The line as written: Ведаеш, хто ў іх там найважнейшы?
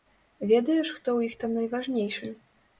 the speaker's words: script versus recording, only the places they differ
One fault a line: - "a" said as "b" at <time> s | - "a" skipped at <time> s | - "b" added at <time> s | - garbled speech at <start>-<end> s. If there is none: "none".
none